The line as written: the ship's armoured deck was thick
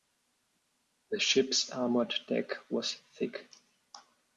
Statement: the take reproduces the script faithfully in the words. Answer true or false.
true